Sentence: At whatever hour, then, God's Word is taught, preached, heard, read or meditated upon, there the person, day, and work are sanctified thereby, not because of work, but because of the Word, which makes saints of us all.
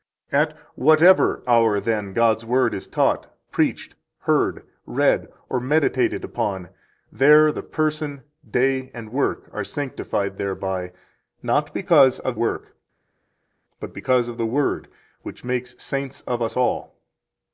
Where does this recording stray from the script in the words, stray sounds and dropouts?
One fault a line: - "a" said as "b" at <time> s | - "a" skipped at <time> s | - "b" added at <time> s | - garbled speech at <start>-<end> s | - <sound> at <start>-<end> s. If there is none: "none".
none